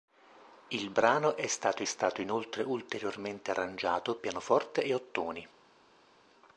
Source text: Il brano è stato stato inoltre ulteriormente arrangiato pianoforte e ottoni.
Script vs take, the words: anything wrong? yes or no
no